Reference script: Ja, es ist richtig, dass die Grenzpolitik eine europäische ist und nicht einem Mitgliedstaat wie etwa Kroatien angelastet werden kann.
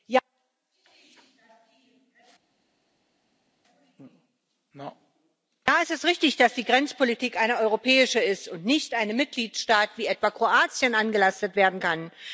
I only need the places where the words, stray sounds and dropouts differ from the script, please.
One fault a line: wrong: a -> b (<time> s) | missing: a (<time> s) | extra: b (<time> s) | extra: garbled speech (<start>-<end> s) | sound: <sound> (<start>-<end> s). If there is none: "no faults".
no faults